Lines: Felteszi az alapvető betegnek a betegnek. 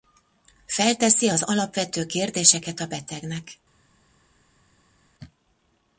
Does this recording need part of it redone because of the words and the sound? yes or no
yes